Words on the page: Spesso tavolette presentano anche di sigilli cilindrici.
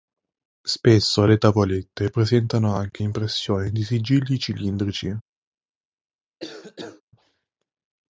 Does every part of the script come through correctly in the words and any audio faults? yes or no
no